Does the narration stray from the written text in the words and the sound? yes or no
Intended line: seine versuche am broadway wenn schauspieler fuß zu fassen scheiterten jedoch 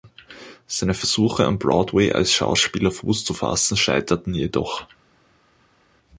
yes